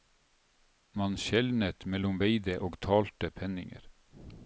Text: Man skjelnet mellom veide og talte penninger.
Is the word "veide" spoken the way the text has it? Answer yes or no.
yes